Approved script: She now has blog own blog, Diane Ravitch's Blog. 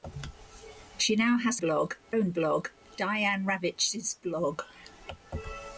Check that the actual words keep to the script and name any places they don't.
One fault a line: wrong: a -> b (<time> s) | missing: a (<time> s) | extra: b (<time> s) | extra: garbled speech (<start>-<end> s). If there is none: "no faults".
no faults